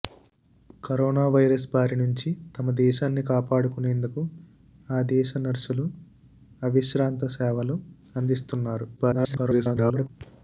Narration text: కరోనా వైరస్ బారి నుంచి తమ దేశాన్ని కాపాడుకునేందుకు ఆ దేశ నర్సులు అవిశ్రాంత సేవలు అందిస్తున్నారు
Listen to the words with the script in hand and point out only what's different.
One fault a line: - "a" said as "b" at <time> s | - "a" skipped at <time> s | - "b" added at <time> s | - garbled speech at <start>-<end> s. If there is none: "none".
- garbled speech at 9.0-10.1 s